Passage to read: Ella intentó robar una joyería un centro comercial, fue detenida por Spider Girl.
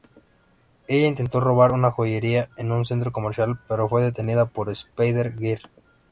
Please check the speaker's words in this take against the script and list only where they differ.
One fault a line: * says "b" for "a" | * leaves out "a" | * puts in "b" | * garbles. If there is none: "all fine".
* puts in "en"
* puts in "pero"